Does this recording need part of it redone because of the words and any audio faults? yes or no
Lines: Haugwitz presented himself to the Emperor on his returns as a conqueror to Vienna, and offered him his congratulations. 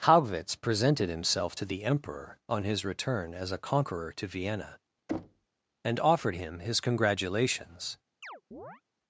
yes